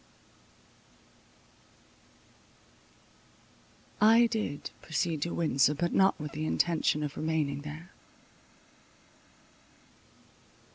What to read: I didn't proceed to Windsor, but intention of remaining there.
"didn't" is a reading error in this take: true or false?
true